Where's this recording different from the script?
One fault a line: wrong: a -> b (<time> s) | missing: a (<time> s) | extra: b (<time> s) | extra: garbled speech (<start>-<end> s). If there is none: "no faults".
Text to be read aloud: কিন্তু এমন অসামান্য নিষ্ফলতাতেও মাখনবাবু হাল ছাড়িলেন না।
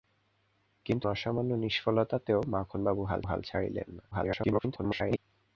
missing: এমন (1.1 s)
extra: হাল (3.2 s)
extra: garbled speech (4.1-5.2 s)